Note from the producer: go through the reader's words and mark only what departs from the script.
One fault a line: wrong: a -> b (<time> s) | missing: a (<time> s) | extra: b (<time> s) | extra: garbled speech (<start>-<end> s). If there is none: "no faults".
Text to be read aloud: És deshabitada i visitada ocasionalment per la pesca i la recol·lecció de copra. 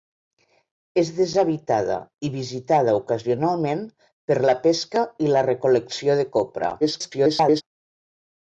extra: garbled speech (6.8-7.6 s)